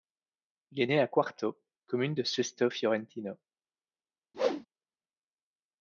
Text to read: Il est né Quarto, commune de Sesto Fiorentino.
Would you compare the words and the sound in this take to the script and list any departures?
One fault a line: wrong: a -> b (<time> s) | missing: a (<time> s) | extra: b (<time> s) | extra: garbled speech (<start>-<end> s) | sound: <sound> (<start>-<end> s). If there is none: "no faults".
extra: à (1.0 s)
sound: whoosh (4.3-4.7 s)